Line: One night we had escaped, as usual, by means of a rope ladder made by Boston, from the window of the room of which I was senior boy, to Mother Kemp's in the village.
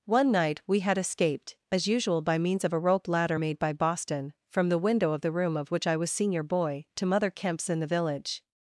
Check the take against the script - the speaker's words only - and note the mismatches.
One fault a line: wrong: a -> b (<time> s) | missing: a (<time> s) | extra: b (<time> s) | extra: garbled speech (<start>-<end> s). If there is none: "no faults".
no faults